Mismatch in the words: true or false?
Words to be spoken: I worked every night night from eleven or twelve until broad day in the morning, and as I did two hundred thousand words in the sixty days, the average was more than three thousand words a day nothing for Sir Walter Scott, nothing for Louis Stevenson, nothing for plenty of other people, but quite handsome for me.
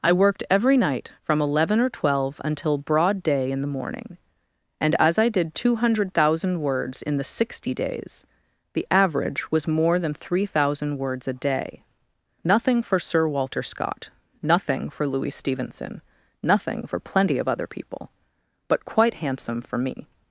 true